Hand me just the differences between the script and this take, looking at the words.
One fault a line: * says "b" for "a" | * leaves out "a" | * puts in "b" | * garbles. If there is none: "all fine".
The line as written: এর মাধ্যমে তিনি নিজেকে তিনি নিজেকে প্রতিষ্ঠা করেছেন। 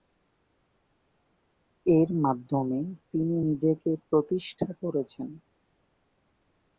* leaves out "তিনি নিজেকে"